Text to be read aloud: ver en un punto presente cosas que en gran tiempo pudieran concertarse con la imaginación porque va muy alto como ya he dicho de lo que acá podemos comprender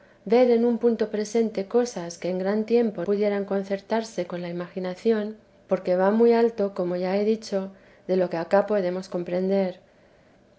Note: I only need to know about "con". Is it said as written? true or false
true